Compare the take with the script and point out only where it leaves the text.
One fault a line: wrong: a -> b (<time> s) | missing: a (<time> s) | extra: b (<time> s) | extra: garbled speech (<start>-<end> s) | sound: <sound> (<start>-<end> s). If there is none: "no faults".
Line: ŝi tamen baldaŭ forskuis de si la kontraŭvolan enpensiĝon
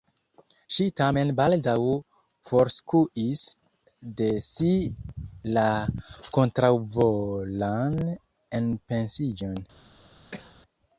sound: cough (10.3-10.6 s)